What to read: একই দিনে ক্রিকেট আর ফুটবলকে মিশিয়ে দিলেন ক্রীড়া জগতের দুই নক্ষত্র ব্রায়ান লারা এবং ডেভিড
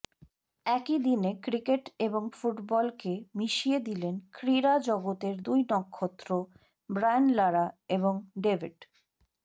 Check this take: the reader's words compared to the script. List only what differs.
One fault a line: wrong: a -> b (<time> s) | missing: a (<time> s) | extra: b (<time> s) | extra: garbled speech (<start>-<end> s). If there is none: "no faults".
wrong: আর -> এবং (2.0 s)